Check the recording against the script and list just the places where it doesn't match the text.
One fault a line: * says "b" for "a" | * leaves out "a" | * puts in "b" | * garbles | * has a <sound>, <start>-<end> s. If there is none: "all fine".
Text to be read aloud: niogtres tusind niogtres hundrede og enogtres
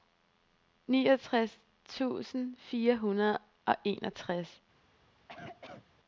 * says "fire" for "niogtres"
* has a cough, 5.2-5.9 s